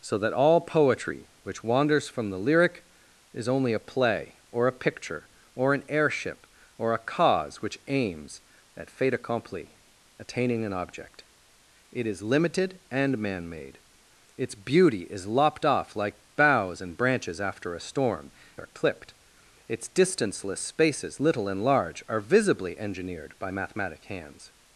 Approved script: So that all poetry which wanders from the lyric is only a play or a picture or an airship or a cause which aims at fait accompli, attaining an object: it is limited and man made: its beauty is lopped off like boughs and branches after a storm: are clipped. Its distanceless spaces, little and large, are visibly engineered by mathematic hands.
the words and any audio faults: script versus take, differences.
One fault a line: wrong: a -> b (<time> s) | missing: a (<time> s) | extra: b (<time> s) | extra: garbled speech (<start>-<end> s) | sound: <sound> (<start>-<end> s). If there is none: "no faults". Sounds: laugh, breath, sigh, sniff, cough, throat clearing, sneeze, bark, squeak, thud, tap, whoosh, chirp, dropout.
no faults